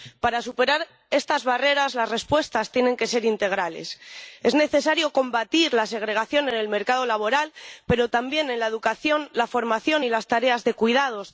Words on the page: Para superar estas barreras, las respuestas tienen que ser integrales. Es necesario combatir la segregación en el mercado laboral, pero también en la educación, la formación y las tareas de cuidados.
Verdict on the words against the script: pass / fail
pass